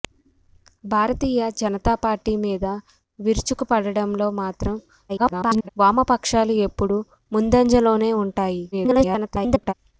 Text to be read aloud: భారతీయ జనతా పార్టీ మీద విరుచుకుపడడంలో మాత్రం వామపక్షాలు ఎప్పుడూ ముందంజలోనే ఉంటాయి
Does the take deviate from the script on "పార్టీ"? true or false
false